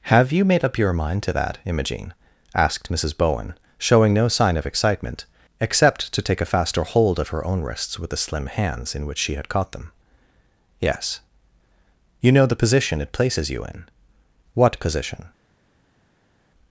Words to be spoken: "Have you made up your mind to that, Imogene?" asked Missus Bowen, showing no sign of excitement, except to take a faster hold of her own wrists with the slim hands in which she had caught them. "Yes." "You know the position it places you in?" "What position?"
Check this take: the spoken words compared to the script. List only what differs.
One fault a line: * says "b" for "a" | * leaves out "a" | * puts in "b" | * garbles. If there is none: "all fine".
all fine